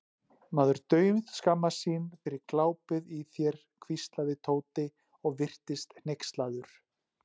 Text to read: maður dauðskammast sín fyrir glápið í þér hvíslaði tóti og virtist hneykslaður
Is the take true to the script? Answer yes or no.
yes